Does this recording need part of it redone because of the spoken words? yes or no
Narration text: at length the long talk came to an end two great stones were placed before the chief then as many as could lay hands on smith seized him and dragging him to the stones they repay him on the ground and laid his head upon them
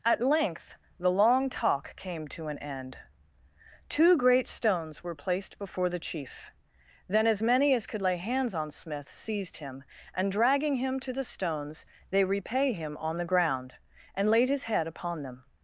no